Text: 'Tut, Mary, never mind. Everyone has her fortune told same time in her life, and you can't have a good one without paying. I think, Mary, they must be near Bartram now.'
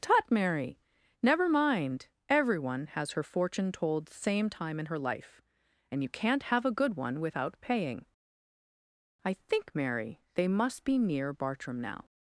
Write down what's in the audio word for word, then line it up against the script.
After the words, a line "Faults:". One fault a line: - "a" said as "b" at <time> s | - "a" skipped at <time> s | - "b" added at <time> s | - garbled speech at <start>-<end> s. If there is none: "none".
'Tut, Mary, never mind. Everyone has her fortune told same time in her life, and you can't have a good one without paying. I think, Mary, they must be near Bartram now.'
Faults:
none